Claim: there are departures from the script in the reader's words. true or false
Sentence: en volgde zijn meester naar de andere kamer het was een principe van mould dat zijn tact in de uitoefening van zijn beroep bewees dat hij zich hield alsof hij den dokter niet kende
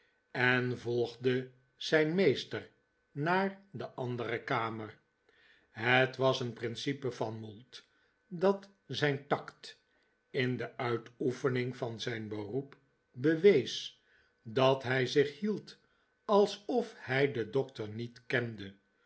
false